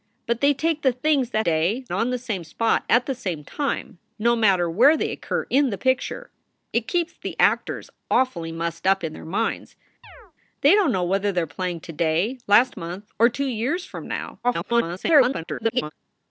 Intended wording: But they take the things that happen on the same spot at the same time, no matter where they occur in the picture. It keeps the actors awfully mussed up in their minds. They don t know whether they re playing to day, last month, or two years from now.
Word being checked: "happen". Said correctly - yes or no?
no